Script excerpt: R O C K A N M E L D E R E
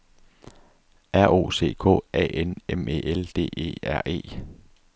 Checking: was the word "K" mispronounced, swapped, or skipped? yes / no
no